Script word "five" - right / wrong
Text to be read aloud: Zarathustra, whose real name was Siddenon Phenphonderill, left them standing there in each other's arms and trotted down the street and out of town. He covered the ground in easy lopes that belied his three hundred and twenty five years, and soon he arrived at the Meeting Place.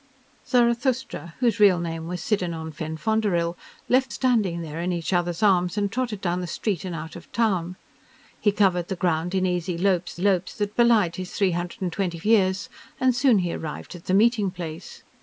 wrong